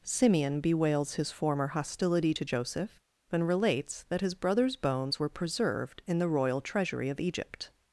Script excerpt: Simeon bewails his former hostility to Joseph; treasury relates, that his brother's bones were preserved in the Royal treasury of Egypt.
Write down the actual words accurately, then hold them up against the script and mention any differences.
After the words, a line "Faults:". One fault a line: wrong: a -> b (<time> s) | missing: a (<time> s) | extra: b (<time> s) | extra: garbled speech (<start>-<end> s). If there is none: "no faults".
Simeon bewails his former hostility to Joseph; and relates, that his brother's bones were preserved in the Royal treasury of Egypt.
Faults:
wrong: treasury -> and (3.3 s)